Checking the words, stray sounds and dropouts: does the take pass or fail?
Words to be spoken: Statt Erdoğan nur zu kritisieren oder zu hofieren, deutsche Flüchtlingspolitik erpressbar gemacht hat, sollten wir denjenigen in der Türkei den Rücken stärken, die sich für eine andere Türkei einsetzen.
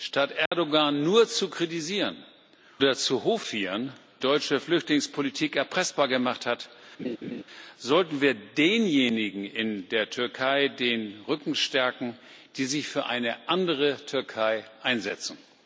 fail